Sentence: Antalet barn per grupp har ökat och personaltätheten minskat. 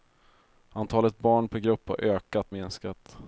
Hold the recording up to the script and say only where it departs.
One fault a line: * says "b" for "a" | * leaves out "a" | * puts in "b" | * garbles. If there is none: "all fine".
* leaves out "och personaltätheten"